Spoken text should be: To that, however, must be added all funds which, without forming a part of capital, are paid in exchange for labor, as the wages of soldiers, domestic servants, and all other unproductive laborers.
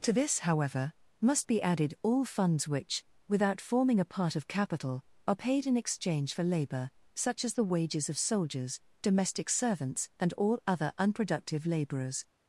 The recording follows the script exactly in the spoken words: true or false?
false